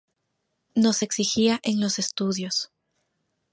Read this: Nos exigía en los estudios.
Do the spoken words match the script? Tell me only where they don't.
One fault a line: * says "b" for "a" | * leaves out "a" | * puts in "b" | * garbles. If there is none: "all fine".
all fine